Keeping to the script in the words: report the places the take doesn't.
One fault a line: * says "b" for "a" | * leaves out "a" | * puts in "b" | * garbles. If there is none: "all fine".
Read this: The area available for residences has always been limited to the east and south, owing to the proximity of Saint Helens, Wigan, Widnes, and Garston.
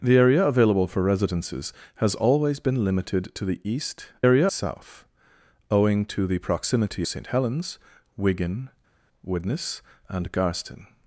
* says "area" for "and"
* leaves out "of"